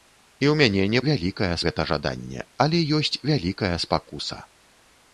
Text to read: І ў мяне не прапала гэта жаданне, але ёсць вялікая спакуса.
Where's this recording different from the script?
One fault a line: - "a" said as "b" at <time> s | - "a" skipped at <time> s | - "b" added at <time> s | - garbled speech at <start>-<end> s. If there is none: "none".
- "прапала" said as "вялікая" at 1.1 s